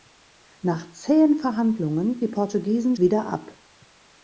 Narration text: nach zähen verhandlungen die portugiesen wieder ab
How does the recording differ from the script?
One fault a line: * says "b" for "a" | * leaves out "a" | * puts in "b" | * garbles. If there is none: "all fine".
all fine